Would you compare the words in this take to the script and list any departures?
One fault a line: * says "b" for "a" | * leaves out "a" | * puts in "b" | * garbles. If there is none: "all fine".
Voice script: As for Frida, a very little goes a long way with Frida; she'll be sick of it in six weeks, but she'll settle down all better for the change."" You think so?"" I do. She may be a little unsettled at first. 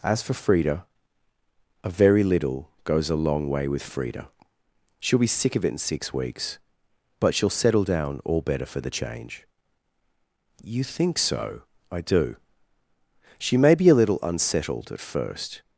all fine